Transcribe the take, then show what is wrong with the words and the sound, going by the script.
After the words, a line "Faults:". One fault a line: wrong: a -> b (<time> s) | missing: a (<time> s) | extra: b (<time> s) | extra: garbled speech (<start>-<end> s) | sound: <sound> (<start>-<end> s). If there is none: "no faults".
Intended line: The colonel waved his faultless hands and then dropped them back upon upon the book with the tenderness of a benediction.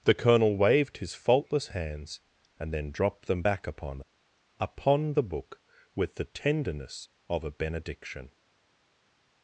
The colonel waved his faultless hands and then dropped them back upon upon the book with the tenderness of a benediction.
Faults:
no faults